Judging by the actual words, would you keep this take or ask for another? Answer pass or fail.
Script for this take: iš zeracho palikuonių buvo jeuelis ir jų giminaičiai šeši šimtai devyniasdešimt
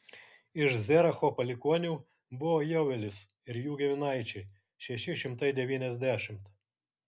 pass